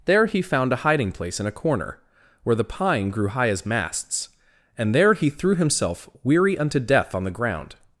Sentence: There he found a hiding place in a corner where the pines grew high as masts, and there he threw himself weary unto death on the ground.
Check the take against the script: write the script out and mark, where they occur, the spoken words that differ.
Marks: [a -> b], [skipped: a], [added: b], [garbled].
There he found a hiding place in a corner where the [pines -> pine] grew high as masts, and there he threw himself weary unto death on the ground.